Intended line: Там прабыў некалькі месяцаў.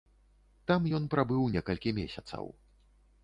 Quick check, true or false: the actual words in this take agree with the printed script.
false